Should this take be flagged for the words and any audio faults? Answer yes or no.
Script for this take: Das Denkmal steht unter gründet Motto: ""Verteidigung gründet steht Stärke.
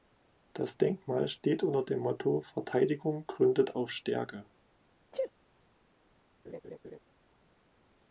yes